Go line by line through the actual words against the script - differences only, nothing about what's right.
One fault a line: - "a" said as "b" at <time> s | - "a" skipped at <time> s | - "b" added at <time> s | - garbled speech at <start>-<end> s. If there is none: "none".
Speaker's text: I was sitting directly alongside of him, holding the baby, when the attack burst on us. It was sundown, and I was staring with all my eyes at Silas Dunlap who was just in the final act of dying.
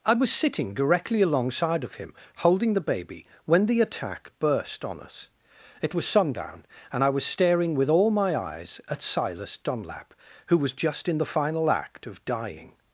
none